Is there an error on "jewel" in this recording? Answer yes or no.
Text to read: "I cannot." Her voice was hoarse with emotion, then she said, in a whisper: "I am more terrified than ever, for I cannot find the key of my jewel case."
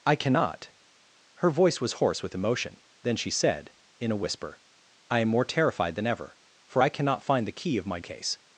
yes